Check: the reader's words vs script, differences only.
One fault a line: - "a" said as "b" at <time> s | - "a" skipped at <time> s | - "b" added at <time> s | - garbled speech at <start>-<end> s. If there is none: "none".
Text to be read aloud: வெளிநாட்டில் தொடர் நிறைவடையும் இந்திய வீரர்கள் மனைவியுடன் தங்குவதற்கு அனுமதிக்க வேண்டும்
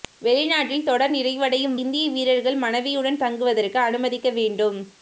none